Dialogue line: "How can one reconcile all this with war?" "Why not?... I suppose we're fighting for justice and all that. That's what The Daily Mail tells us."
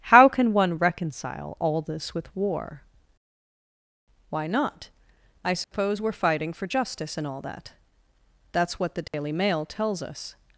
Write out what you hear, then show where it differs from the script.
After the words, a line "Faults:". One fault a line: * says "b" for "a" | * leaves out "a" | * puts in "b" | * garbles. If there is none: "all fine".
"How can one reconcile all this with war?" "Why not?... I suppose we're fighting for justice and all that. That's what The Daily Mail tells us."
Faults:
all fine